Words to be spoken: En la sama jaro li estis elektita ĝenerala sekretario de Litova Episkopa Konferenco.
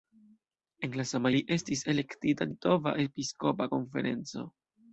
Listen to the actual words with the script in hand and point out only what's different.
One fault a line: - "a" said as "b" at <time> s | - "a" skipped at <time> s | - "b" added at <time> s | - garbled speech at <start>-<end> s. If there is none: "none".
- "jaro" skipped at 1.3 s
- "ĝenerala sekretario de" skipped at 2.5 s